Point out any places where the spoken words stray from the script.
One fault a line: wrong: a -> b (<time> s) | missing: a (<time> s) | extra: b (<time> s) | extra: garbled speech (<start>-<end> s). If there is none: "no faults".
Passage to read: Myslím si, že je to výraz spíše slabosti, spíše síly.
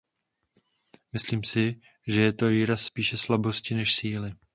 wrong: spíše -> než (3.7 s)